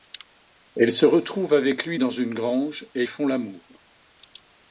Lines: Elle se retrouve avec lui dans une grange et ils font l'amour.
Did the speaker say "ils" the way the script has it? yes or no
no